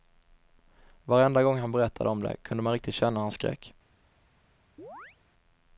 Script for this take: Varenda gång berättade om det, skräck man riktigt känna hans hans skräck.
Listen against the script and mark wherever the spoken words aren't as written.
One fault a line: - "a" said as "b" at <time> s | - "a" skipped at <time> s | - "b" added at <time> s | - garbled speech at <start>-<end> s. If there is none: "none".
- "han" added at 1.6 s
- "skräck" said as "kunde" at 2.4 s
- "hans" skipped at 3.3 s